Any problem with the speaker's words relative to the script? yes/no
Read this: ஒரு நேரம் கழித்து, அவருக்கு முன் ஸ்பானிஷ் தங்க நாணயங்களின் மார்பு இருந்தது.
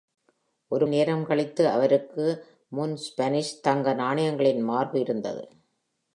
no